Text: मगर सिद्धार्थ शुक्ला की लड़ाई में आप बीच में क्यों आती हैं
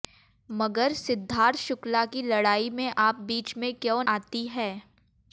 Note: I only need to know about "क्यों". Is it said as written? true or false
true